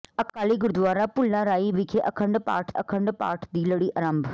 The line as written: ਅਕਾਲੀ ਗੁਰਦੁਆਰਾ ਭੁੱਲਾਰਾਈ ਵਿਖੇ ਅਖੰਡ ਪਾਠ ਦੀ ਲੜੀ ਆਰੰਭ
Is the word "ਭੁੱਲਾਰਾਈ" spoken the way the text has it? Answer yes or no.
yes